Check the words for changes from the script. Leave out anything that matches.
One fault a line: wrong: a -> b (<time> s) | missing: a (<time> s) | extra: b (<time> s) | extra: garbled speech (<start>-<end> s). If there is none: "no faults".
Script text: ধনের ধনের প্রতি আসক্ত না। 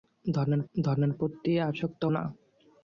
no faults